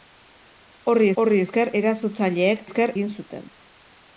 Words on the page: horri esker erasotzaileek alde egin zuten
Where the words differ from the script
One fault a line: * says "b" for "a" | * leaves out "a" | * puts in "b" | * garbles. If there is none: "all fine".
* puts in "horri"
* says "esker" for "alde"